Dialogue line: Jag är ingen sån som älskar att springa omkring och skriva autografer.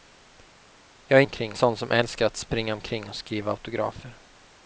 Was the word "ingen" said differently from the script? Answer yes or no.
yes